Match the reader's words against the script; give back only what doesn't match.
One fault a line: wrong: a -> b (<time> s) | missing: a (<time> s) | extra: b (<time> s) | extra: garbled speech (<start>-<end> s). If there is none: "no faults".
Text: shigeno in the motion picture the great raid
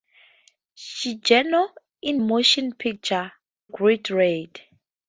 missing: the (2.2 s)
missing: the (3.3 s)